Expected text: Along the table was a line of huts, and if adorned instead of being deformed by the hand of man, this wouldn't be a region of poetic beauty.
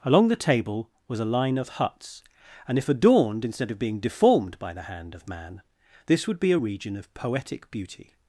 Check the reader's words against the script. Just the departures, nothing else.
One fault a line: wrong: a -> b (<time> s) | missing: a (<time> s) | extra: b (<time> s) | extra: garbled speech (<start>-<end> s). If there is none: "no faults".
wrong: wouldn't -> would (6.3 s)